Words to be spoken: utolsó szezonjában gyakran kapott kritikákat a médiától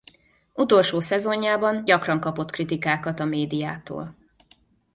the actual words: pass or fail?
pass